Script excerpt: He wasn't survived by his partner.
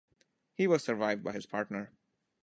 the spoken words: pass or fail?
fail